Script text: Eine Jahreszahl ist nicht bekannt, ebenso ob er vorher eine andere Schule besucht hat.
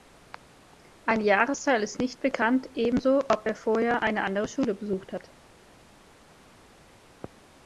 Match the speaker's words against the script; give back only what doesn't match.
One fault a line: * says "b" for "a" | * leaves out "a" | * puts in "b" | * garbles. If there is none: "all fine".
all fine